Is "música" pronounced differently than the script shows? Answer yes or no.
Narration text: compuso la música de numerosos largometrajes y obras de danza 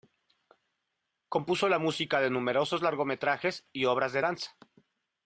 no